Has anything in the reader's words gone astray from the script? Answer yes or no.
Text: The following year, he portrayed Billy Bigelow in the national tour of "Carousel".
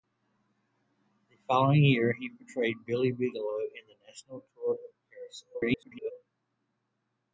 yes